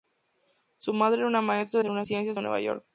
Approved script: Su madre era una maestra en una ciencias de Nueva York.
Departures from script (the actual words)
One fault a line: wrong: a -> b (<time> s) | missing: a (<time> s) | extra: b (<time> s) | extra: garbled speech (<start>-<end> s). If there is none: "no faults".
no faults